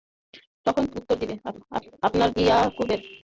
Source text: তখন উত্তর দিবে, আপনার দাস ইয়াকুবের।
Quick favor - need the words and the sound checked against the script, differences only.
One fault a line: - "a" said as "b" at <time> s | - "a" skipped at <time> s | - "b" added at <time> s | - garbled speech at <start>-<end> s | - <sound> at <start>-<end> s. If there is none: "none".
- "দাস" skipped at 2.3 s